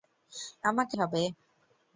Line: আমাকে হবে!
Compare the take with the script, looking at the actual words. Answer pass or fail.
pass